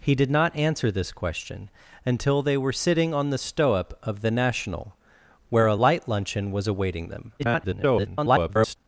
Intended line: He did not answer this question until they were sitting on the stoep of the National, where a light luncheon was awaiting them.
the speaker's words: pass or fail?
fail